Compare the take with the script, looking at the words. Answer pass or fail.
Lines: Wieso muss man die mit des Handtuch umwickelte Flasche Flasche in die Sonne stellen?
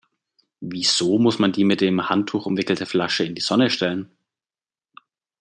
fail